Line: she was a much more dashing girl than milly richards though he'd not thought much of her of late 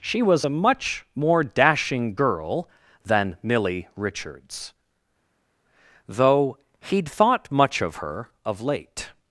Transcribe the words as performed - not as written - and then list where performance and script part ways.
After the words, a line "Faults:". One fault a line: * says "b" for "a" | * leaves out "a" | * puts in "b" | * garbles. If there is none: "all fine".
she was a much more dashing girl than milly richards though he'd thought much of her of late
Faults:
* leaves out "not"